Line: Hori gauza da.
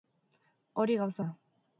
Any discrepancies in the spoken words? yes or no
no